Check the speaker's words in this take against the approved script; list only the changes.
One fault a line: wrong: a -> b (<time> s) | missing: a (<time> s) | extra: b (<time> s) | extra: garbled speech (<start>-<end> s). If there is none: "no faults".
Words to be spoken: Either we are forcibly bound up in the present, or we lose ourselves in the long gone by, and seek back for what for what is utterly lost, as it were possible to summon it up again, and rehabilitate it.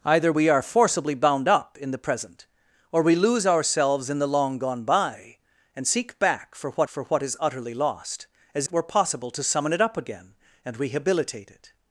no faults